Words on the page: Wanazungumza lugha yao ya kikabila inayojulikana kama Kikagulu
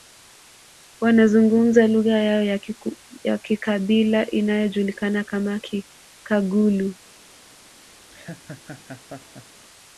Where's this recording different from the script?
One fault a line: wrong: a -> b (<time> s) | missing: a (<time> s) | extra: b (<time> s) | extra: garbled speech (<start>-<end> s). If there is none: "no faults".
no faults